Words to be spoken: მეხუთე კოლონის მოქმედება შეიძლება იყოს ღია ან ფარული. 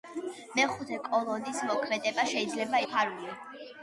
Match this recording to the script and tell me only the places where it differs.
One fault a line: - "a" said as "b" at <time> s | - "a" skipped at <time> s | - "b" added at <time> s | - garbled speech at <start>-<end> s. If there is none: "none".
- "იყოს ღია ან" skipped at 2.8 s